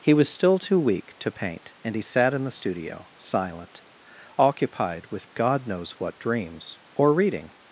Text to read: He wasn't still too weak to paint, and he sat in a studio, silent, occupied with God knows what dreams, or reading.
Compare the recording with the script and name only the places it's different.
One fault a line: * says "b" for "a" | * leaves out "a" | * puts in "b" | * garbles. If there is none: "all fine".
* says "was" for "wasn't"
* says "the" for "a"